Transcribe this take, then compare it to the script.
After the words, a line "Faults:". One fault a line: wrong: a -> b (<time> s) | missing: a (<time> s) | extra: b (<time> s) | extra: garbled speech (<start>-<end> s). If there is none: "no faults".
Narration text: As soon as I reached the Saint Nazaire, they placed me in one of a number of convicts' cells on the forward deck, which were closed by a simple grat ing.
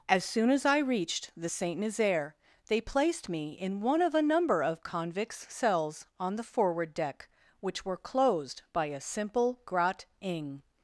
As soon as I reached the Saint Nazaire, they placed me in one of a number of convicts' cells on the forward deck, which were closed by a simple grat ing.
Faults:
no faults